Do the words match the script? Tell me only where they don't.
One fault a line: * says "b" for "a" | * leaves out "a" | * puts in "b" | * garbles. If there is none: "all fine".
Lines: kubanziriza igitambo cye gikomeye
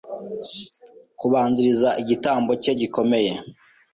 all fine